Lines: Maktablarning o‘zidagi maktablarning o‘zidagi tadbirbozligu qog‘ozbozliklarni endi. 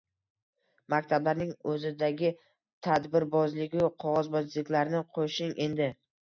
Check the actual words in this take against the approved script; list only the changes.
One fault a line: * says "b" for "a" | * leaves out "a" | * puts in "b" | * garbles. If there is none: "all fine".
* leaves out "maktablarning o‘zidagi"
* puts in "qo‘shing"